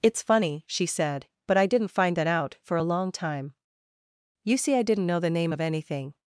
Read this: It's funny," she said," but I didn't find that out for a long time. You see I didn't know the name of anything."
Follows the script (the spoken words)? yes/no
yes